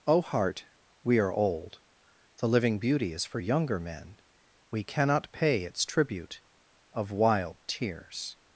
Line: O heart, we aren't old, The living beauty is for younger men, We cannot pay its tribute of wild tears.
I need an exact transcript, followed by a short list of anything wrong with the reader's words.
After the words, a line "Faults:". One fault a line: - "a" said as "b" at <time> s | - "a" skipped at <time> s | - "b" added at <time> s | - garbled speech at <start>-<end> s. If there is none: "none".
O heart, we are old, The living beauty is for younger men, We cannot pay its tribute of wild tears.
Faults:
- "aren't" said as "are" at 1.2 s